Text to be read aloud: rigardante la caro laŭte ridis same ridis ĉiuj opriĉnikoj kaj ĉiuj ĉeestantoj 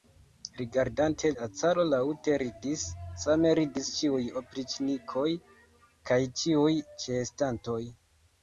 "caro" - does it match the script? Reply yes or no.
yes